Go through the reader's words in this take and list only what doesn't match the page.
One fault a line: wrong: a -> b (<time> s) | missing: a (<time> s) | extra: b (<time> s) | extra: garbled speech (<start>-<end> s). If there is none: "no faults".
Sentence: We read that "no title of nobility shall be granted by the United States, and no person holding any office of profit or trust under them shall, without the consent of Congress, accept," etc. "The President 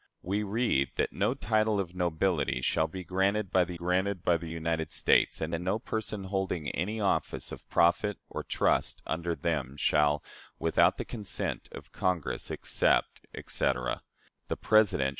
extra: granted by the (3.7 s)
extra: and (5.5 s)